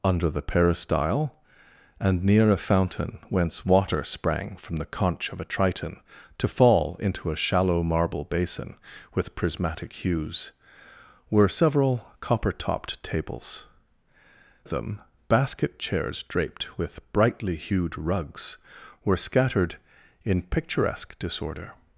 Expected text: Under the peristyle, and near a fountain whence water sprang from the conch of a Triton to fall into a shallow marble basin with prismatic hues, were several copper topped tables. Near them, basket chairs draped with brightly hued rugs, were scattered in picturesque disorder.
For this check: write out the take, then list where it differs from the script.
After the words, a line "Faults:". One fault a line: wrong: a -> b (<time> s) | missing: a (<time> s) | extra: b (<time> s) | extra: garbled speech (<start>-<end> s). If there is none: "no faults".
Under the peristyle, and near a fountain whence water sprang from the conch of a Triton to fall into a shallow marble basin with prismatic hues, were several copper topped tables. Them, basket chairs draped with brightly hued rugs, were scattered in picturesque disorder.
Faults:
missing: Near (13.7 s)